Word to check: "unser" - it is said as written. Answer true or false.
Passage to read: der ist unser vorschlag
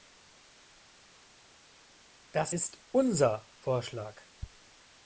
true